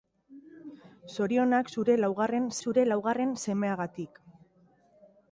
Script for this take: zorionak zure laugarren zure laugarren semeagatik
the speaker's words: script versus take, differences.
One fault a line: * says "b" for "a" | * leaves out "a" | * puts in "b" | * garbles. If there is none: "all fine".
all fine